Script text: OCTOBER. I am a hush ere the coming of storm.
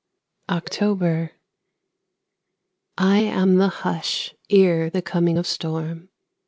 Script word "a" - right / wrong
wrong